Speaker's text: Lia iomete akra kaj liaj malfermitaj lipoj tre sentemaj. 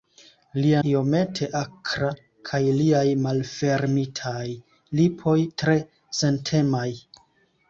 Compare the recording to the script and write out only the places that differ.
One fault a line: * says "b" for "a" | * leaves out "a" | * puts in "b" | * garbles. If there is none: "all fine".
all fine